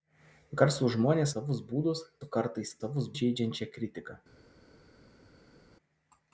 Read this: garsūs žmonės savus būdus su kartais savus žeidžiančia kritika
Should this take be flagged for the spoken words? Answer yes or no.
no